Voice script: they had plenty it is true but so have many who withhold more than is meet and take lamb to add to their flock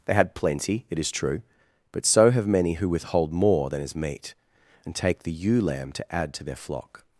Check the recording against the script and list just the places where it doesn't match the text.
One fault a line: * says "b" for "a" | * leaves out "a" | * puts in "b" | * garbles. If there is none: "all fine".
* puts in "the ewe"